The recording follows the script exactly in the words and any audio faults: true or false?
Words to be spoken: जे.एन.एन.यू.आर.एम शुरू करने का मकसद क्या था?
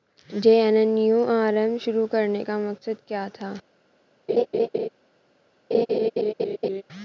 false